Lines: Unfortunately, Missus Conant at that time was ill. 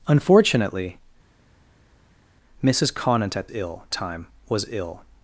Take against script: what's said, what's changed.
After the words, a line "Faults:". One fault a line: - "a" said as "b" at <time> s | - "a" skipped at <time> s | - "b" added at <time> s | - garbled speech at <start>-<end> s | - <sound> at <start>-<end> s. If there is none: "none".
Unfortunately, Missus Conant at ill time was ill.
Faults:
- "that" said as "ill" at 3.5 s